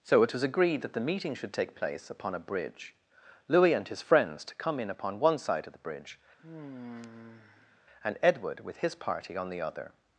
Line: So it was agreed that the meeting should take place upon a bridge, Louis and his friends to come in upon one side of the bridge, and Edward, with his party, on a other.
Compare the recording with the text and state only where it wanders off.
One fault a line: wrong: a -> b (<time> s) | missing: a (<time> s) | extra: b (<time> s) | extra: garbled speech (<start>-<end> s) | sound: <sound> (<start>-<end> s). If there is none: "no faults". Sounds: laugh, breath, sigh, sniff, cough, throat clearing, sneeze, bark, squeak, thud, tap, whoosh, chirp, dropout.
sound: sigh (6.4-7.8 s)
wrong: a -> the (9.5 s)